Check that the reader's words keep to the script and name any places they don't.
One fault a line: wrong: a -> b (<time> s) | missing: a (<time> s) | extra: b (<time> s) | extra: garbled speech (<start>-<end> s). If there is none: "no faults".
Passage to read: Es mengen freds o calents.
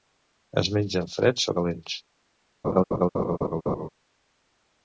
no faults